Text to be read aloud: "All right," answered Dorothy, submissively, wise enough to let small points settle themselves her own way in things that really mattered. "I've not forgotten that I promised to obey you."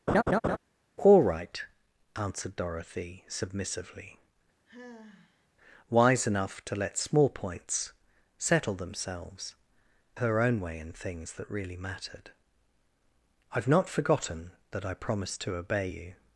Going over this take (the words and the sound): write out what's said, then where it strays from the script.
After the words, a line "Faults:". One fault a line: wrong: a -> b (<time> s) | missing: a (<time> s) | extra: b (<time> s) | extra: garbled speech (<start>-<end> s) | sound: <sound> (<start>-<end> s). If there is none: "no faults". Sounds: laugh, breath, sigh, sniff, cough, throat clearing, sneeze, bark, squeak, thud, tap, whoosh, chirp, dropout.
"All right," answered Dorothy, submissively, wise enough to let small points settle themselves her own way in things that really mattered. "I've not forgotten that I promised to obey you."
Faults:
sound: laugh (0.1-0.6 s)
sound: sigh (4.7-5.5 s)